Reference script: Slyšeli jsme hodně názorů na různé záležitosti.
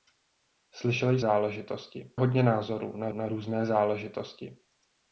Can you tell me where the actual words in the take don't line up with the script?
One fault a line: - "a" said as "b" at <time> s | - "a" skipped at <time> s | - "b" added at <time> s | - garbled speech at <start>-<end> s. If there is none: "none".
- "jsme" said as "záležitosti" at 1.2 s
- "na" added at 3.1 s